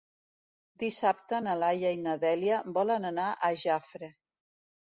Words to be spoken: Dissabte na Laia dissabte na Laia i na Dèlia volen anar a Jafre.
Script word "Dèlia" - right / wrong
right